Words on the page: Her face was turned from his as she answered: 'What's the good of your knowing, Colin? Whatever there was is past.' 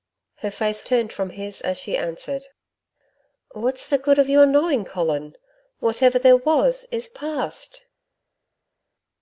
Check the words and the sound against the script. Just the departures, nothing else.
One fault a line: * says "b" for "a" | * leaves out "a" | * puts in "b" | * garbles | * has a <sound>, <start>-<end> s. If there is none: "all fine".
* leaves out "was"